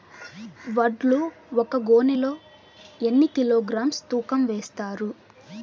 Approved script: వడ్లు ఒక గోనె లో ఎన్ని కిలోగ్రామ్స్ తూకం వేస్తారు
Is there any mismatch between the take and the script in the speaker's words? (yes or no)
no